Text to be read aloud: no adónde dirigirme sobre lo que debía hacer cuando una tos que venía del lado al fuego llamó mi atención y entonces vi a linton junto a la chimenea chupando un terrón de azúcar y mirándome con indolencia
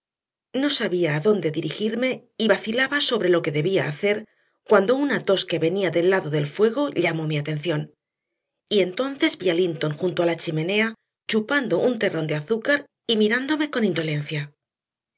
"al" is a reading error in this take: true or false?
true